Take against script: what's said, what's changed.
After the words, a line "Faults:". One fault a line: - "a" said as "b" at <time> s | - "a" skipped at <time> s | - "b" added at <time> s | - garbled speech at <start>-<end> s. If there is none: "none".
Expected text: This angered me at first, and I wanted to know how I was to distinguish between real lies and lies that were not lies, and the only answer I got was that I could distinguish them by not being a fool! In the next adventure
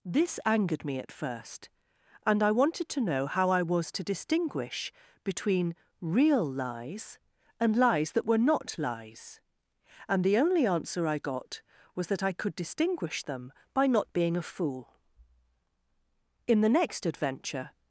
This angered me at first, and I wanted to know how I was to distinguish between real lies and lies that were not lies, and the only answer I got was that I could distinguish them by not being a fool! In the next adventure
Faults:
none